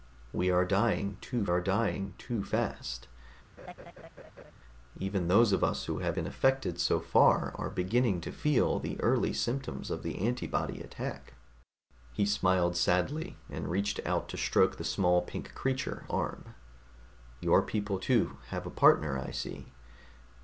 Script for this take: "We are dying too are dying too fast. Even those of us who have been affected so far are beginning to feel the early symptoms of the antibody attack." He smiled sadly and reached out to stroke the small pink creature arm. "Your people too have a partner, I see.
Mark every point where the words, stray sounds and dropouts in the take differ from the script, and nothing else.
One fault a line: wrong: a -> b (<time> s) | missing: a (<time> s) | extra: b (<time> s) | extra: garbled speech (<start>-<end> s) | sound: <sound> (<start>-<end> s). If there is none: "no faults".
sound: laugh (3.6-4.5 s)